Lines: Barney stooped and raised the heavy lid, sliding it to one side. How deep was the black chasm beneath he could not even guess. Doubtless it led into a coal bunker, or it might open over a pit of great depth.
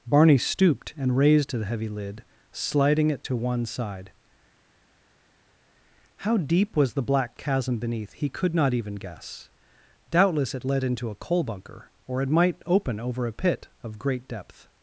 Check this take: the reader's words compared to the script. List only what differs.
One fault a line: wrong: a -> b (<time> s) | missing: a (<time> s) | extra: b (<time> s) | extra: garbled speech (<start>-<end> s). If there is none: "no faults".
no faults